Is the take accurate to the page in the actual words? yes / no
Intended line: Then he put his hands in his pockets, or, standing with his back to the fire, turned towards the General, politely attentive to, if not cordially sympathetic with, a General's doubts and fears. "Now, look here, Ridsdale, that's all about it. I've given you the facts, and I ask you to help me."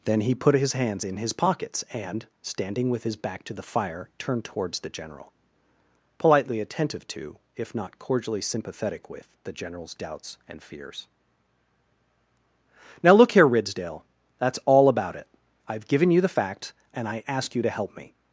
no